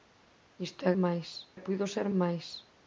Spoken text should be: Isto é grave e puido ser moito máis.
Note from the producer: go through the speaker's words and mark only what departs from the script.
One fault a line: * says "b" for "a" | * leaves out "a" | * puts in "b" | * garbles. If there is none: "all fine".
* says "máis" for "grave"
* leaves out "moito"